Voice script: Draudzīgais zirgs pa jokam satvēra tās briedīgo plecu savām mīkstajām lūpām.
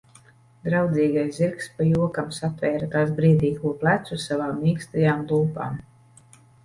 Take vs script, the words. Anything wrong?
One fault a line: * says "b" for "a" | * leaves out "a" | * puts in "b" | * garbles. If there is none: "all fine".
all fine